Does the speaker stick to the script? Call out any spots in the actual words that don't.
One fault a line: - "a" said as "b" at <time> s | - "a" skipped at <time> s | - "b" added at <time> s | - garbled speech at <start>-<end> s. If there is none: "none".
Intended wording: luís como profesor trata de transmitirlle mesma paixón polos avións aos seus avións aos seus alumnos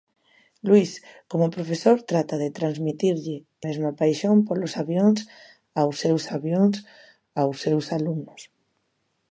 none